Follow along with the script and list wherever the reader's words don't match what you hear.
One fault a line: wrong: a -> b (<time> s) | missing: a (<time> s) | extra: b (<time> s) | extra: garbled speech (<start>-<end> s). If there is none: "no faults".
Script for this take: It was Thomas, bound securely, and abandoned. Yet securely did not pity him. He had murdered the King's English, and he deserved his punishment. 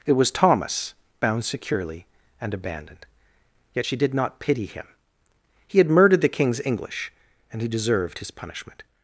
wrong: securely -> she (3.8 s)